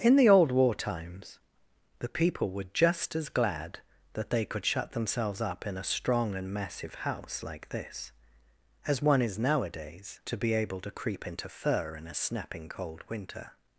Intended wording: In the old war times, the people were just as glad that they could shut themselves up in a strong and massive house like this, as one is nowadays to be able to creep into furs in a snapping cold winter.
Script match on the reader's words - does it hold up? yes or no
no